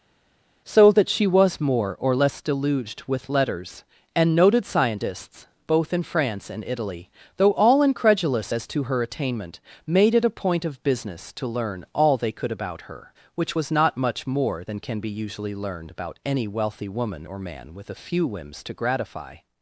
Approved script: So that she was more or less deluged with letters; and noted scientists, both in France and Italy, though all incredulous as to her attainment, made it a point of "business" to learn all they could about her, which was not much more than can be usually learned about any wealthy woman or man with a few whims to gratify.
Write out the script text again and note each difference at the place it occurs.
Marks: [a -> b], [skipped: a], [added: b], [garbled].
So that she was more or less deluged with letters; and noted scientists, both in France and Italy, though all incredulous as to her attainment, made it a point of "business" to learn all they could about her, which was not much more than can be usually learned about any wealthy woman or man with a few whims to gratify.